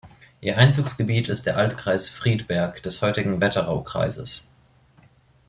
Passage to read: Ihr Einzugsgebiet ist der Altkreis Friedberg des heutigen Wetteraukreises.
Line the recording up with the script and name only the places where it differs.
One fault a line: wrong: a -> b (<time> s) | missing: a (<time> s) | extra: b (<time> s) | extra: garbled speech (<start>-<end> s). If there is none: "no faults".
no faults